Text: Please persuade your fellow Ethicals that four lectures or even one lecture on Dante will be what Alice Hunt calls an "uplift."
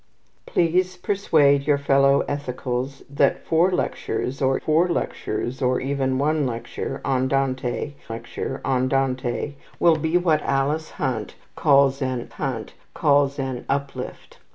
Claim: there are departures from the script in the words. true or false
true